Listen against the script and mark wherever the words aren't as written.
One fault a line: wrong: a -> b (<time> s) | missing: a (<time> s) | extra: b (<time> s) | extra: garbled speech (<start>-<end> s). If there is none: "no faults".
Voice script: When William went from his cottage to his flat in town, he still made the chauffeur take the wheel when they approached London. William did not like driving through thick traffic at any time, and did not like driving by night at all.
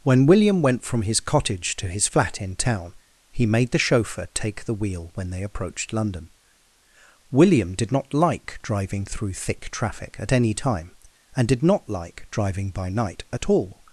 missing: still (3.5 s)